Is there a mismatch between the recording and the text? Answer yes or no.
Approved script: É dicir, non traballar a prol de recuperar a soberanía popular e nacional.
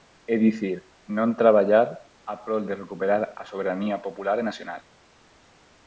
no